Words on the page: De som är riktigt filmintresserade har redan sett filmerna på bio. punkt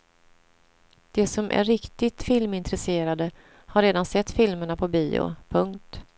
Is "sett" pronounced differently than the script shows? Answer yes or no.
no